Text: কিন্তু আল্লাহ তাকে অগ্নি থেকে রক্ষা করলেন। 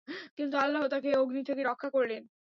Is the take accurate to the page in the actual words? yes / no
yes